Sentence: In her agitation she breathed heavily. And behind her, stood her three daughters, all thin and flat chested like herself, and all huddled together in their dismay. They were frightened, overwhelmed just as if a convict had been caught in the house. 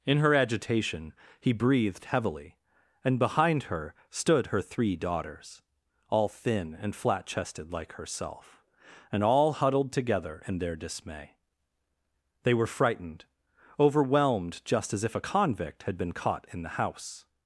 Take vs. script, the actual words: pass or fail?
fail